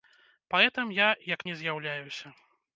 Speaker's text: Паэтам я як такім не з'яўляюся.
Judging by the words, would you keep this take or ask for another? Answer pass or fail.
fail